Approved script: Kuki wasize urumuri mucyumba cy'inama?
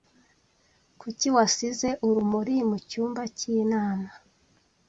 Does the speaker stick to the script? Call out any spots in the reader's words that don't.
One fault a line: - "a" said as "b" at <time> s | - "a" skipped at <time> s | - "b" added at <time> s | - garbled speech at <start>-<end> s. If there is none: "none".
none